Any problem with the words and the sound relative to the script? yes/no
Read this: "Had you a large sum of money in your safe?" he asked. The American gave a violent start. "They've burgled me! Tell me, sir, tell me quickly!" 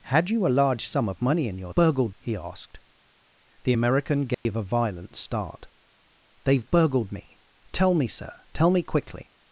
yes